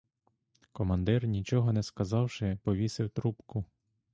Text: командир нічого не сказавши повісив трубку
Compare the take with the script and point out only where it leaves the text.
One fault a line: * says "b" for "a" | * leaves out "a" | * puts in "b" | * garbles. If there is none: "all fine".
all fine